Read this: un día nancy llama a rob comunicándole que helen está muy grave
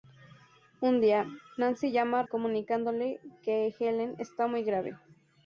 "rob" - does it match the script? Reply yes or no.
no